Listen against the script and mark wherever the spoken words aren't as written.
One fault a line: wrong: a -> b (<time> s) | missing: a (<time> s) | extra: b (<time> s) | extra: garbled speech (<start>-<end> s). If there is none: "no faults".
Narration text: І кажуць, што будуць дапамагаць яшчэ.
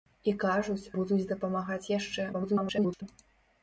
missing: што (0.9 s)
extra: garbled speech (2.3-3.0 s)